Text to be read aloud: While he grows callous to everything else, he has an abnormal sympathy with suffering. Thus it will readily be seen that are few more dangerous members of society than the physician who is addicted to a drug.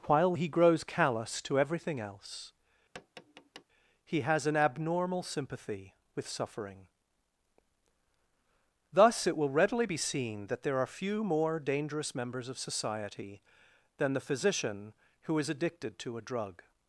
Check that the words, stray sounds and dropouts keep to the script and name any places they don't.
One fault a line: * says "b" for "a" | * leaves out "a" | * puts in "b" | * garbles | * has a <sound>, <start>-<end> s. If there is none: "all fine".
* has a tap, 2.9-3.6 s
* puts in "there"